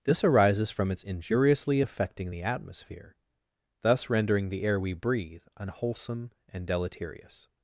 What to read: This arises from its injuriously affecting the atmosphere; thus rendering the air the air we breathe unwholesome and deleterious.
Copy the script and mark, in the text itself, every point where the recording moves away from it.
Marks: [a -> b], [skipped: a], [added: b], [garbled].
This arises from its injuriously affecting the atmosphere; thus rendering the air [skipped: the air] we breathe unwholesome and deleterious.